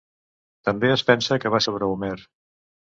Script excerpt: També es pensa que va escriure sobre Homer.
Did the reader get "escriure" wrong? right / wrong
wrong